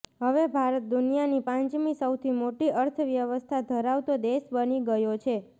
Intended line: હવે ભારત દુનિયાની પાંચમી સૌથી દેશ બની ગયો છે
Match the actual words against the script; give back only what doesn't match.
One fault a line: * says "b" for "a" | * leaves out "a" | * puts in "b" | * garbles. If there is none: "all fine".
* puts in "મોટી અર્થવ્યવસ્થા ધરાવતો"